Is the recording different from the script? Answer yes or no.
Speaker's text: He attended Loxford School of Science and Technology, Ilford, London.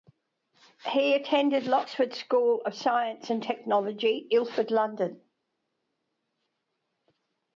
no